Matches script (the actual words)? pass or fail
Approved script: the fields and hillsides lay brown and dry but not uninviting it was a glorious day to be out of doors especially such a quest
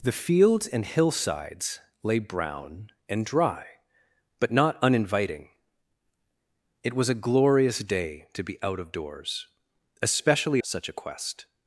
pass